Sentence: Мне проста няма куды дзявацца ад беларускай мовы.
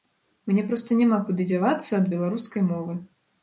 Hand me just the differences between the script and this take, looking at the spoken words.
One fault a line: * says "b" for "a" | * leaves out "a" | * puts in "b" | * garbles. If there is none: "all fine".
all fine